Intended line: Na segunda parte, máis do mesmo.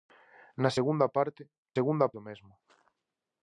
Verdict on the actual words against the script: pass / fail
fail